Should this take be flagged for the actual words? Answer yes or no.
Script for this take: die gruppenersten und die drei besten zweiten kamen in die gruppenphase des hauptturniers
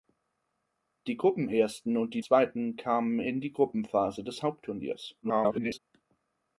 yes